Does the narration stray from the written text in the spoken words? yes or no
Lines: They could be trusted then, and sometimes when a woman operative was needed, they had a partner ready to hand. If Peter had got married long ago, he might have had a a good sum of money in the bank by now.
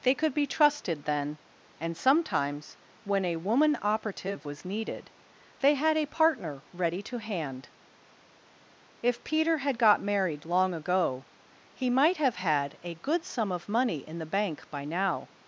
yes